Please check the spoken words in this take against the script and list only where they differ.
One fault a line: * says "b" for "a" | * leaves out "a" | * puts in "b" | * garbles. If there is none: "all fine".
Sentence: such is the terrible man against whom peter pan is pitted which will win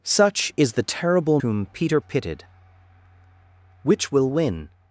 * leaves out "man against"
* leaves out "pan is"